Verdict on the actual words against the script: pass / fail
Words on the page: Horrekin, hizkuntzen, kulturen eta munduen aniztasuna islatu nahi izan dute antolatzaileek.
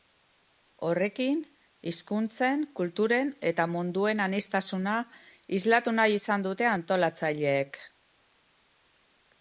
pass